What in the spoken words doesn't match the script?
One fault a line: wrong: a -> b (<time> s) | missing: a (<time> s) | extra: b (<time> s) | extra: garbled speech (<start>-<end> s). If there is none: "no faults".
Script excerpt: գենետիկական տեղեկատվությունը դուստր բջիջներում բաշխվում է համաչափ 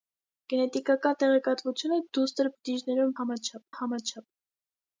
wrong: բաշխվում -> համաչափ (3.2 s)